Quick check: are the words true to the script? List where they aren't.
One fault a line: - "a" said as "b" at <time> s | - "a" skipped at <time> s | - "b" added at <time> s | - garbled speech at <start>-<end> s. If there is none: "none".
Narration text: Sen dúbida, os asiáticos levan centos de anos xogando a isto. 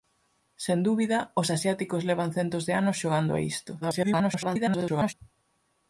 - garbled speech at 3.8-5.1 s